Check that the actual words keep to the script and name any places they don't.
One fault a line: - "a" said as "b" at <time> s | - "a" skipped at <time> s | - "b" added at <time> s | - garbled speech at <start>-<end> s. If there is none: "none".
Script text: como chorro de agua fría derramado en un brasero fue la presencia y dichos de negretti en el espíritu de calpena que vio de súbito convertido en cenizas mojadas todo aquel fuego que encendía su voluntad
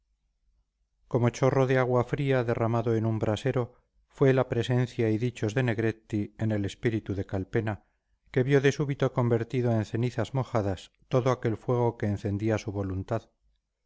none